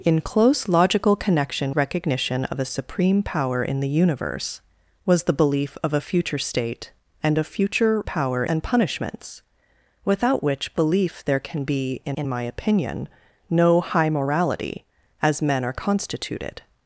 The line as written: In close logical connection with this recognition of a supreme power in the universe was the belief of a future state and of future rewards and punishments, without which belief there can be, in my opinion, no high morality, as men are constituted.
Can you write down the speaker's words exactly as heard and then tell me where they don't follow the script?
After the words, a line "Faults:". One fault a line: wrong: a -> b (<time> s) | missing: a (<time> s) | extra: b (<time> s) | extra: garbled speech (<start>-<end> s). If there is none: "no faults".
In close logical connection recognition of a supreme power in the universe was the belief of a future state and of future power and punishments, without which belief there can be, in in my opinion, no high morality, as men are constituted.
Faults:
missing: with this (1.8 s)
wrong: rewards -> power (8.0 s)
extra: in (12.2 s)